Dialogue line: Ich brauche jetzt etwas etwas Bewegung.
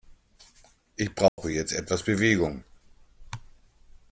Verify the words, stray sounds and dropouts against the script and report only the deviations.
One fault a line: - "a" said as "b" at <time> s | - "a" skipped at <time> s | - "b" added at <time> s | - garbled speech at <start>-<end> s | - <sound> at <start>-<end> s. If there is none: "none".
- dropout at 1.3-1.4 s
- "etwas" skipped at 2.0 s